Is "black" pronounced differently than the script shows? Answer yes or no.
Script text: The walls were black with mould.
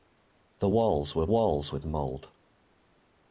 yes